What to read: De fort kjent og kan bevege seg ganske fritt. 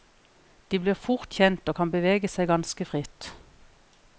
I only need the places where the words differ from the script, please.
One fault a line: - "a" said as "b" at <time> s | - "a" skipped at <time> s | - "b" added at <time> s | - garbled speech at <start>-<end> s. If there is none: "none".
- "blir" added at 0.8 s